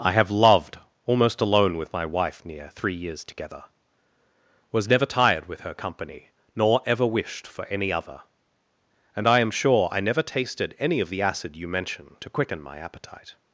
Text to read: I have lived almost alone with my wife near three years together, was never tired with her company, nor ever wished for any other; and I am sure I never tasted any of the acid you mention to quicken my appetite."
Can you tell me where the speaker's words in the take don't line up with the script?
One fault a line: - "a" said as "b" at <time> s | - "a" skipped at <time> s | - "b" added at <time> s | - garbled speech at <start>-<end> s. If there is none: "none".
- "lived" said as "loved" at 0.3 s